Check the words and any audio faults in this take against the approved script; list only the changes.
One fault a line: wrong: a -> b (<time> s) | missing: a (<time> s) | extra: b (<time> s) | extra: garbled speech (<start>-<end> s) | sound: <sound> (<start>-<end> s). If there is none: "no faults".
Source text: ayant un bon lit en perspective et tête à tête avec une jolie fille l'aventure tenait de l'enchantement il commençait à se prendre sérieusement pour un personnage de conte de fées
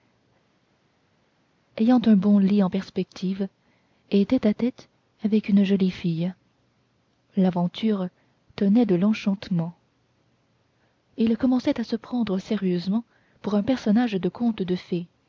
no faults